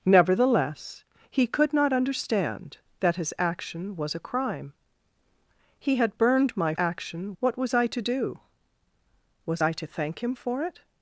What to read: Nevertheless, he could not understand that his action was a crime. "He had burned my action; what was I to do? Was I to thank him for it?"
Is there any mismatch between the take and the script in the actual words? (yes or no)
no